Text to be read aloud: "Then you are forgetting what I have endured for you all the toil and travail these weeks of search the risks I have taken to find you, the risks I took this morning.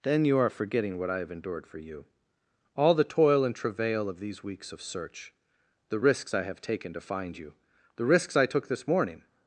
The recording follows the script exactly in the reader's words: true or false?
false